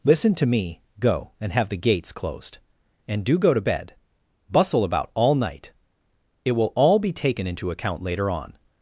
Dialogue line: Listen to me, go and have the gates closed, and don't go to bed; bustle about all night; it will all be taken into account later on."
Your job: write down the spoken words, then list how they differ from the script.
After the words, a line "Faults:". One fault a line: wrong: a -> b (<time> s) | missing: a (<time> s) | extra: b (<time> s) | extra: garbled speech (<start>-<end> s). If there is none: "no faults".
Listen to me, go and have the gates closed, and do go to bed; bustle about all night; it will all be taken into account later on."
Faults:
wrong: don't -> do (3.2 s)